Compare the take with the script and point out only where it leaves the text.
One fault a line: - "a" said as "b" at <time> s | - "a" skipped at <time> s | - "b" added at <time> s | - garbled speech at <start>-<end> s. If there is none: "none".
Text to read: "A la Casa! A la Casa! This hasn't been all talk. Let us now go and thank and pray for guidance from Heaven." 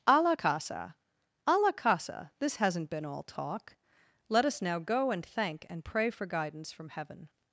none